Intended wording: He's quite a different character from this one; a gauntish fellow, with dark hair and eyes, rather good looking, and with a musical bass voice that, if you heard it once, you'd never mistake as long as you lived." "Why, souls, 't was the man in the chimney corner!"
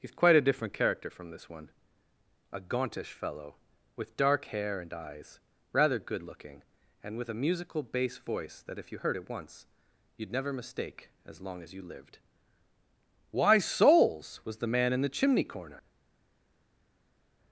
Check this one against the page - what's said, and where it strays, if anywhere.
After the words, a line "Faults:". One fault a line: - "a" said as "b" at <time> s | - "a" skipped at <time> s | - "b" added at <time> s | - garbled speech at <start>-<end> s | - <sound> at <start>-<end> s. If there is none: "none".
He's quite a different character from this one; a gauntish fellow, with dark hair and eyes, rather good looking, and with a musical bass voice that, if you heard it once, you'd never mistake as long as you lived." "Why, souls, was the man in the chimney corner!"
Faults:
- "t" skipped at 14.4 s